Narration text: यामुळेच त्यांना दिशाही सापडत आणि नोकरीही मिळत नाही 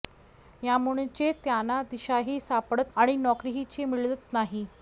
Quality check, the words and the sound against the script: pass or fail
pass